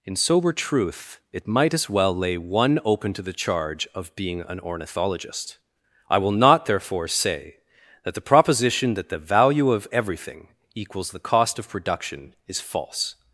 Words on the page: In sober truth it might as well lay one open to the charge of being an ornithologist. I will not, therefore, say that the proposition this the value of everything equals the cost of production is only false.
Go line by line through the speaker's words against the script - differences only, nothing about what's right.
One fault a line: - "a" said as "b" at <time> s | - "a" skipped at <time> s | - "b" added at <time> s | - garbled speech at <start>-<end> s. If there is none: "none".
- "this" said as "that" at 8.9 s
- "only" skipped at 12.6 s